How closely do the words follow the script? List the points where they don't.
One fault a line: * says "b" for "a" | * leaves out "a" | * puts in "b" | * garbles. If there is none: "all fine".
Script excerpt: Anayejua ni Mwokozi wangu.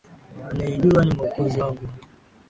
all fine